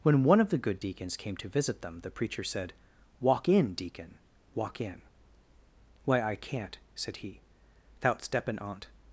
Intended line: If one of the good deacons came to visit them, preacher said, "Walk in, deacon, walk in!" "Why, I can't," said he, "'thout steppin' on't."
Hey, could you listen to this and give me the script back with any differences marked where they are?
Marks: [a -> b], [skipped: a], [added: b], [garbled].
[If -> When] one of the good deacons came to visit them, [added: the] preacher said, "Walk in, deacon, walk in!" "Why, I can't," said he, "'thout steppin' on't."